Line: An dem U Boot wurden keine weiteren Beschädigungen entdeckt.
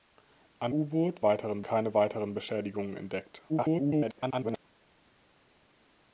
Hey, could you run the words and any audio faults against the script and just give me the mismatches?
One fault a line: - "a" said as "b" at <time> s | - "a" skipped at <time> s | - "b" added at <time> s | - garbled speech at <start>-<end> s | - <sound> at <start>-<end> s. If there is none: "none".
- "dem" skipped at 0.7 s
- "wurden" said as "weiteren" at 1.2 s
- garbled speech at 3.5-4.6 s